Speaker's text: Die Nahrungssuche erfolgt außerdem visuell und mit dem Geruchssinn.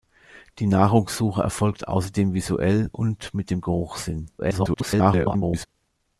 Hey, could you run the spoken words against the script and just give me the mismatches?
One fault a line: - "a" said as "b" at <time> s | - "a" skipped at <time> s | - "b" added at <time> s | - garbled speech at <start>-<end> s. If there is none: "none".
- garbled speech at 4.4-5.7 s